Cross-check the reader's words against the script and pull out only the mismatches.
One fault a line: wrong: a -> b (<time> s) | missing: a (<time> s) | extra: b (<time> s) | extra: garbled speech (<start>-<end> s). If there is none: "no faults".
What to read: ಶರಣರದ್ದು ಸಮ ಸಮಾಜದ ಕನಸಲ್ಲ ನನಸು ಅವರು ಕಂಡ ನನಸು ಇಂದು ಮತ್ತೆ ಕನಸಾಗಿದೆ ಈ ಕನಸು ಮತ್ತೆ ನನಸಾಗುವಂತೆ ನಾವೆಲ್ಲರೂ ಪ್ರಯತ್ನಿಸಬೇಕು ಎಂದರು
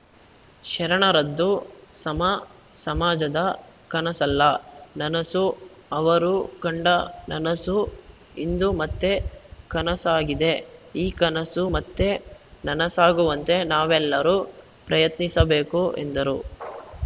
no faults